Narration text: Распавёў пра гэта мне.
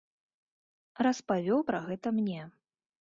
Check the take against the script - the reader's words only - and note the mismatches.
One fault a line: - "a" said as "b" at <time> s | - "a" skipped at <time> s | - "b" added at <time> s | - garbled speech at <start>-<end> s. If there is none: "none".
none